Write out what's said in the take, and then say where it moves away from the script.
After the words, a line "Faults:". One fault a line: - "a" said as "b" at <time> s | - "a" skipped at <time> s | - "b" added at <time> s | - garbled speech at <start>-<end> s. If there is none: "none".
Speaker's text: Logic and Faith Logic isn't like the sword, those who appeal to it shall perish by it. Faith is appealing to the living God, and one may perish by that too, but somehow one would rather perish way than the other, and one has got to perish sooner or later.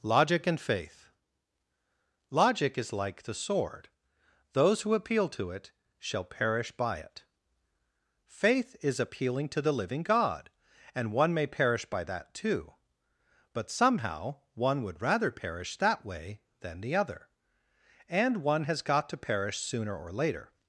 Logic and Faith Logic is like the sword, those who appeal to it shall perish by it. Faith is appealing to the living God, and one may perish by that too, but somehow one would rather perish that way than the other, and one has got to perish sooner or later.
Faults:
- "isn't" said as "is" at 2.8 s
- "that" added at 15.8 s